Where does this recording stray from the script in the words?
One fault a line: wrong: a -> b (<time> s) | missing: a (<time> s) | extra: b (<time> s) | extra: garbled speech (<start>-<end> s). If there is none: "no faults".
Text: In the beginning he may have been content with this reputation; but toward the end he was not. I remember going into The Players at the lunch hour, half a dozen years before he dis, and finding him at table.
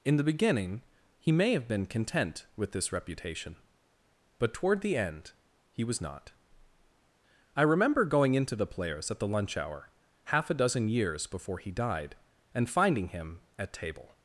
wrong: dis -> died (11.7 s)